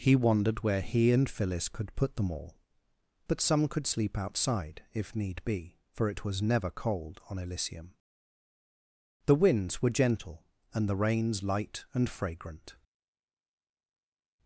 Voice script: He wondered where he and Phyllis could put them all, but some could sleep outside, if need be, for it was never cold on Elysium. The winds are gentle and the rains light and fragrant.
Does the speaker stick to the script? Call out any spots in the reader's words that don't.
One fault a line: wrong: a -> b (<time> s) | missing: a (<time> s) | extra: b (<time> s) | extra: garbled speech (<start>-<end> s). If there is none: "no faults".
wrong: are -> were (9.8 s)